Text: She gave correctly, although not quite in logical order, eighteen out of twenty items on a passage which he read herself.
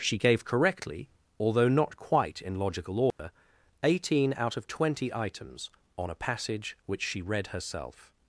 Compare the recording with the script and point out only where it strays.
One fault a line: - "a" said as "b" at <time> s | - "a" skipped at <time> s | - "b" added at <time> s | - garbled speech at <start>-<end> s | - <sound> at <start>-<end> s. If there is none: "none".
- dropout at 3.1-3.2 s
- "he" said as "she" at 7.0 s